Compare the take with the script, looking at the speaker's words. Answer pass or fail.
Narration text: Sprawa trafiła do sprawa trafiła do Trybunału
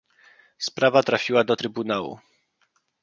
fail